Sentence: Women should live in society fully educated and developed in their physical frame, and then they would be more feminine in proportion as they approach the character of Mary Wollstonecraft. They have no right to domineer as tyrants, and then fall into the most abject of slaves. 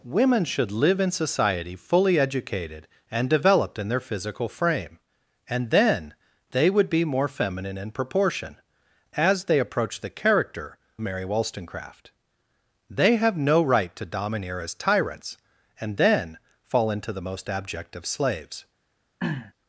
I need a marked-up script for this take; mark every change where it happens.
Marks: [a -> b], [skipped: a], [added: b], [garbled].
Women should live in society fully educated and developed in their physical frame, and then they would be more feminine in proportion as they approach the character [skipped: of] Mary Wollstonecraft. They have no right to domineer as tyrants, and then fall into the most abject of slaves.